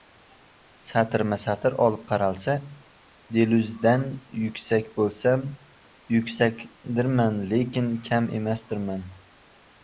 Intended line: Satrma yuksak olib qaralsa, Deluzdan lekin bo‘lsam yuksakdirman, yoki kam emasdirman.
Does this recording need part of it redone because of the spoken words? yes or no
yes